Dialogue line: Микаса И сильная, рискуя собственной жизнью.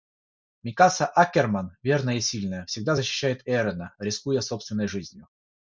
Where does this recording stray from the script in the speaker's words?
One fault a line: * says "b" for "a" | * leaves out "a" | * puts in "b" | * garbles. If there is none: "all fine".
* puts in "Аккерман верная"
* puts in "всегда защищает Эрена"